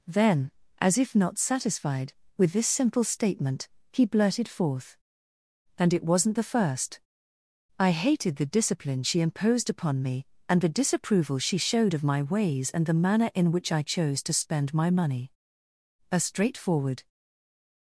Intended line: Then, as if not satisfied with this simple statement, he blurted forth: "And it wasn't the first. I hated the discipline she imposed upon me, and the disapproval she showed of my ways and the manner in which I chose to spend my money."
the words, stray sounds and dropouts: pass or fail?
fail